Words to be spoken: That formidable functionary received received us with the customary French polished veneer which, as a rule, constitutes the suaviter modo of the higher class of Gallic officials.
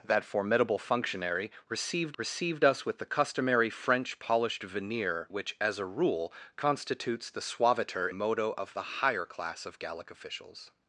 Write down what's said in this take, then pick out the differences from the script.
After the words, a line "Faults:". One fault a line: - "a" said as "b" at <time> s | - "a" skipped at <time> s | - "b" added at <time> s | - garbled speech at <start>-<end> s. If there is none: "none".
That formidable functionary received received us with the customary French polished veneer which, as a rule, constitutes the suaviter modo of the higher class of Gallic officials.
Faults:
none